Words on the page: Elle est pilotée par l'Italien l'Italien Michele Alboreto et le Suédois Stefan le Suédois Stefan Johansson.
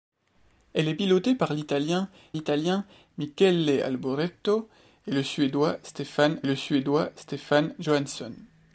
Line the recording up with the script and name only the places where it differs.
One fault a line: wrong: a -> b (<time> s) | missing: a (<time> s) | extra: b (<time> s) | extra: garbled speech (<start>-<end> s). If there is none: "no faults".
no faults